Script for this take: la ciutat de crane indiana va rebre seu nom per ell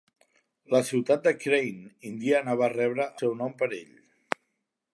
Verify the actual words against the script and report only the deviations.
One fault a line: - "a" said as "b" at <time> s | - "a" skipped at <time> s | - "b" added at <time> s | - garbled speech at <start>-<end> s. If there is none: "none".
none